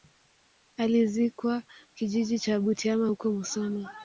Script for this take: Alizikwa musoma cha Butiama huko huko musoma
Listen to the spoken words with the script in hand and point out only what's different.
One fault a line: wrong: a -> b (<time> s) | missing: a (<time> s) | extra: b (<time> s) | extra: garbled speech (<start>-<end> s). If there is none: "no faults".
wrong: musoma -> kijiji (1.9 s)
missing: huko (3.3 s)